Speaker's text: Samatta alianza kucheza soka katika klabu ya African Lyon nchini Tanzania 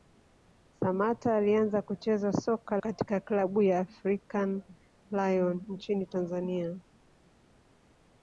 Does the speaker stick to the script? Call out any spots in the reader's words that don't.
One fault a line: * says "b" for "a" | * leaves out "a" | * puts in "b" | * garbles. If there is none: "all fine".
all fine